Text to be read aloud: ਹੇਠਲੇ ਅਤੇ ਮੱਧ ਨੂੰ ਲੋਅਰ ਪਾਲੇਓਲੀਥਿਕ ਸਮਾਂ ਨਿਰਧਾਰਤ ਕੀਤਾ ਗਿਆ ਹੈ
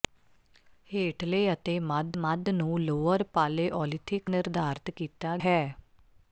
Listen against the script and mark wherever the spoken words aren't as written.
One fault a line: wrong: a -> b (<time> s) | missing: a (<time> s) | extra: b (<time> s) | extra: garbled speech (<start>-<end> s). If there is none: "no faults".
extra: ਮੱਧ (2.2 s)
missing: ਸਮਾਂ (4.3 s)
missing: ਗਿਆ (5.4 s)